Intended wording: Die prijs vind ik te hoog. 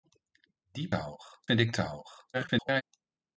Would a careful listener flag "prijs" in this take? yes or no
yes